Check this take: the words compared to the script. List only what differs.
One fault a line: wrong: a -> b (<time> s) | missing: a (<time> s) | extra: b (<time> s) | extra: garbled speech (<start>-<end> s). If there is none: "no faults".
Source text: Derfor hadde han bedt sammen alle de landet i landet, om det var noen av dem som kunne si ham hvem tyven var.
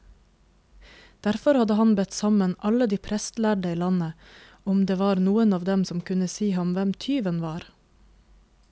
wrong: landet -> prestlærde (3.1 s)